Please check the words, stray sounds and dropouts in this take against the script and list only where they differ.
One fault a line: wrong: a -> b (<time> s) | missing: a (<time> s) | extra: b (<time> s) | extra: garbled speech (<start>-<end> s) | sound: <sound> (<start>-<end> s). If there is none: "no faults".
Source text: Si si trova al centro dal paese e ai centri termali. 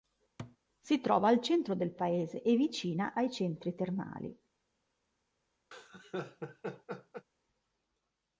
sound: thud (0.4-0.6 s)
missing: si (1.0 s)
wrong: dal -> del (1.7 s)
extra: vicina (2.6 s)
sound: laugh (5.7-7.3 s)